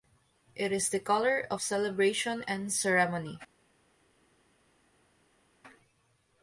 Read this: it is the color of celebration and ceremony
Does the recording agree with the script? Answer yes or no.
yes